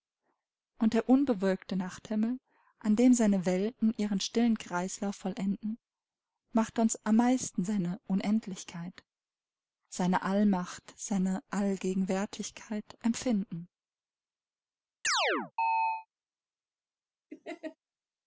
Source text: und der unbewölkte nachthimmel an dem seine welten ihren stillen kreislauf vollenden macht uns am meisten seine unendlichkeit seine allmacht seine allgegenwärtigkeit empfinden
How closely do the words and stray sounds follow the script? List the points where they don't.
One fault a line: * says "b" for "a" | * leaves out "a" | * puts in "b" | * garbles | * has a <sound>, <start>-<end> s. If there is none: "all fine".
* has a chirp, 15.0-16.1 s
* has a laugh, 17.3-17.8 s